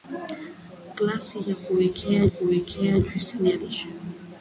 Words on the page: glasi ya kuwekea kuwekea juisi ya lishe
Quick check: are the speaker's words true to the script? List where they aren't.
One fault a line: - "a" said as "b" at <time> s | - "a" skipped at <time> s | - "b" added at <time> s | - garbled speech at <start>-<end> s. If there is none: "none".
none